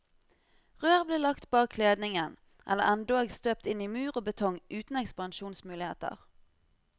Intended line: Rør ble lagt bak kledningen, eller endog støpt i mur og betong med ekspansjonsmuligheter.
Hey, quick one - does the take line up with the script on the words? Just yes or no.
no